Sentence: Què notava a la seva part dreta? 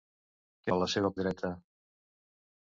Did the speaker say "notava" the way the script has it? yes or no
no